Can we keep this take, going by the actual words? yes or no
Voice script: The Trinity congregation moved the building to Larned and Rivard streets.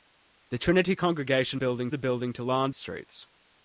no